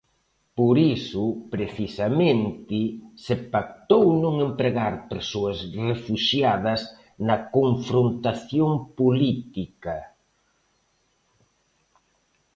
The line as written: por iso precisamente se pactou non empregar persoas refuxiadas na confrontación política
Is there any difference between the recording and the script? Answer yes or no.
no